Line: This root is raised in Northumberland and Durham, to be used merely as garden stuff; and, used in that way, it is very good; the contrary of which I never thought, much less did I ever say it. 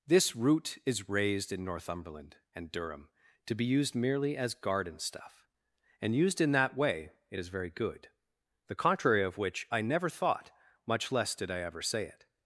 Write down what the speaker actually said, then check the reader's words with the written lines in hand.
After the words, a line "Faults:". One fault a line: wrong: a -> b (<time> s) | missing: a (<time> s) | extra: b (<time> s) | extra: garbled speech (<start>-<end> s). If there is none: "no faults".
This root is raised in Northumberland and Durham, to be used merely as garden stuff; and, used in that way, it is very good; the contrary of which I never thought, much less did I ever say it.
Faults:
no faults